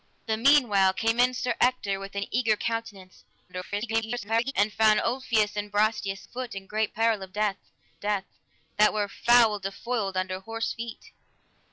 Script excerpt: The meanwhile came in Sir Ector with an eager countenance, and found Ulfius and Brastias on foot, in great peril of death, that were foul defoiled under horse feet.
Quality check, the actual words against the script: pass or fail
fail